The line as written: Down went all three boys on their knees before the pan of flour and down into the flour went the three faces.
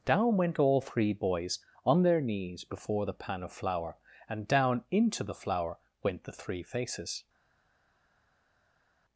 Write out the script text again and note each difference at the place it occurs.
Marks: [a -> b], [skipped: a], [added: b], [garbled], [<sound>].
Down went all three boys on their knees before the pan of flour and down into the flour went the three faces.